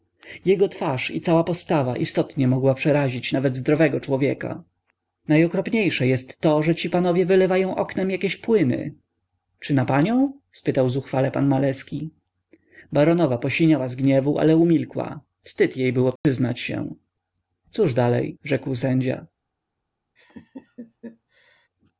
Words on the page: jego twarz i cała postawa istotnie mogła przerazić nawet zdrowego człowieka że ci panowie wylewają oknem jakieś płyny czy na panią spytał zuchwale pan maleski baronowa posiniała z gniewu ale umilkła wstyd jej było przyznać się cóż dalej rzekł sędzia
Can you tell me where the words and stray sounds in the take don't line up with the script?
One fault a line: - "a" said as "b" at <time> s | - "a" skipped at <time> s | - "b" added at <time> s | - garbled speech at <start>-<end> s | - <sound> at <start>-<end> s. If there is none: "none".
- "najokropniejsze jest to" added at 5.3 s
- dropout at 16.2-16.2 s
- laugh at 20.2-21.7 s